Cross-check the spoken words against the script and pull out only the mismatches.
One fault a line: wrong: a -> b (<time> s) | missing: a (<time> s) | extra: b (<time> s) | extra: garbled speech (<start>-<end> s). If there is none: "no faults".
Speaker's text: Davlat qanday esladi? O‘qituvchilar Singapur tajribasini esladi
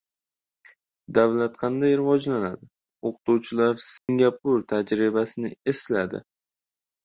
wrong: esladi -> rivojlanadi (2.0 s)